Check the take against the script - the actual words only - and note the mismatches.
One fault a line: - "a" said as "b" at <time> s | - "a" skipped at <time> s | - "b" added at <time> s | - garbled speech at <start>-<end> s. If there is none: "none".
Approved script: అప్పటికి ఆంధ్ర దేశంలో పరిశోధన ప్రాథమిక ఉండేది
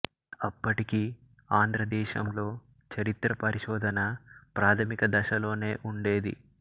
- "చరిత్ర" added at 2.9 s
- "దశలోనే" added at 5.1 s